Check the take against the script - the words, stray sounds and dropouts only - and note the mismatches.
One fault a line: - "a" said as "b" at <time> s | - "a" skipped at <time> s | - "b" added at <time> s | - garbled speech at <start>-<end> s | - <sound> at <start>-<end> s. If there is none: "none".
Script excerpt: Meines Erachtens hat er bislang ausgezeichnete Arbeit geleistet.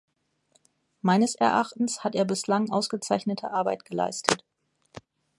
none